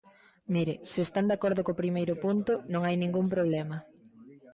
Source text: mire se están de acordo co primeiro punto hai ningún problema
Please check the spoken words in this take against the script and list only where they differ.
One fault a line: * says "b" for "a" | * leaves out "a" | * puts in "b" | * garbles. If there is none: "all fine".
* puts in "non"